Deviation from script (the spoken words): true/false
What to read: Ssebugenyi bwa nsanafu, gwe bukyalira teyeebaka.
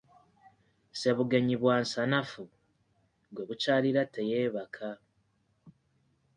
false